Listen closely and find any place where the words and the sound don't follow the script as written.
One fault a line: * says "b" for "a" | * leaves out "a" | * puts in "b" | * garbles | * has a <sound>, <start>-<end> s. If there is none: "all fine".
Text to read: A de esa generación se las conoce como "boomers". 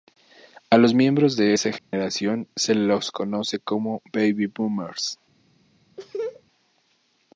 * puts in "los miembros"
* has a dropout, 1.8-1.9 s
* says "los" for "las"
* puts in "baby"
* has a laugh, 6.0-6.4 s